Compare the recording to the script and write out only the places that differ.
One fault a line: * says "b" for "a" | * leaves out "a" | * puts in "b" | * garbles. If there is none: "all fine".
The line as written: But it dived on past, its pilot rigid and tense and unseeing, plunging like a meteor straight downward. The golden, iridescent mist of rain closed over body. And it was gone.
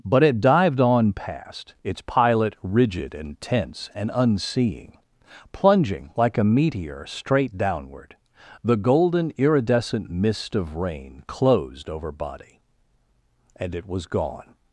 all fine